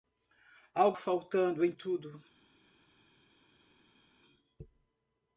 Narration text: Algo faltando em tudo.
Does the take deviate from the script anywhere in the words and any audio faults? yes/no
no